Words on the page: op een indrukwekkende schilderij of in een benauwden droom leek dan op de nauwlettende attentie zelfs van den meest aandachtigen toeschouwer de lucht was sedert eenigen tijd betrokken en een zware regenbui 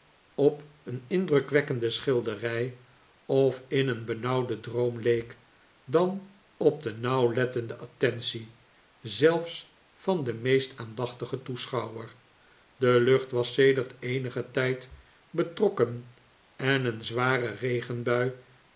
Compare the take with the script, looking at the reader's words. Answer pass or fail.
pass